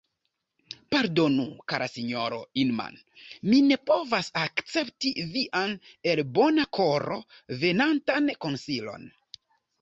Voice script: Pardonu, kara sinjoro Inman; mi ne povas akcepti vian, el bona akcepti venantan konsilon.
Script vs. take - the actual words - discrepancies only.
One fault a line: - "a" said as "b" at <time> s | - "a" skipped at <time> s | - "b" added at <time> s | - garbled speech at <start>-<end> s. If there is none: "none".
- "akcepti" said as "koro" at 6.8 s